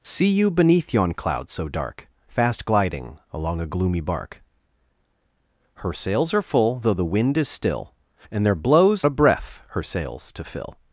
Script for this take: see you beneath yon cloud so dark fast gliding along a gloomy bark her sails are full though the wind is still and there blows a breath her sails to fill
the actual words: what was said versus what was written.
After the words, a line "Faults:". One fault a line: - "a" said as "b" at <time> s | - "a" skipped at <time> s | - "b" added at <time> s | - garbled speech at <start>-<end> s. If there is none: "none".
see you beneath yon cloud so dark fast gliding along a gloomy bark her sails are full though the wind is still and there blows a breath her sails to fill
Faults:
none